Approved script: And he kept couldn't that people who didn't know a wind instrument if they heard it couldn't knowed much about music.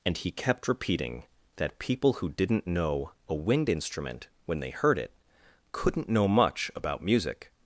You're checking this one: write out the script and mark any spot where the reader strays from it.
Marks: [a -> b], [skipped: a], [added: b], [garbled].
And he kept [couldn't -> repeating] that people who didn't know a wind instrument [if -> when] they heard it couldn't [knowed -> know] much about music.